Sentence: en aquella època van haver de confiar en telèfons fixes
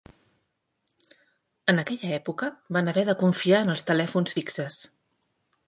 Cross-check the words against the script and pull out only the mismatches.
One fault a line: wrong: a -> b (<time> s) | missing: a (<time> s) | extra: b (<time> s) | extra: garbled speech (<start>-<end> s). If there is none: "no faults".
extra: els (3.8 s)